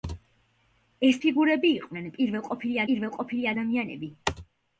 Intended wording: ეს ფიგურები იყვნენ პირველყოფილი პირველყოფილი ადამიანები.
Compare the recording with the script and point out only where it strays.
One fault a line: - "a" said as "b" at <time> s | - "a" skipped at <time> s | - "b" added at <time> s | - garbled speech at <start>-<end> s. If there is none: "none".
none